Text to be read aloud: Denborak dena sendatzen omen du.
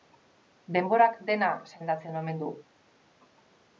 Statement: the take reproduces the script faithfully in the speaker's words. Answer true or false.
true